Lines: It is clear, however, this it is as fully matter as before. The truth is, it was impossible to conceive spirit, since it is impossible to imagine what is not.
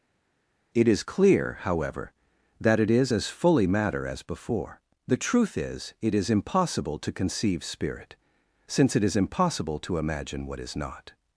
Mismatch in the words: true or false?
true